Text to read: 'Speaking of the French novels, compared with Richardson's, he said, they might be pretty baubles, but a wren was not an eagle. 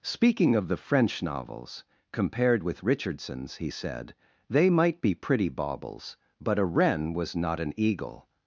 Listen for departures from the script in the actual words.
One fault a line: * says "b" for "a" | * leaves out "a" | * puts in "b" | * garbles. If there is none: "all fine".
all fine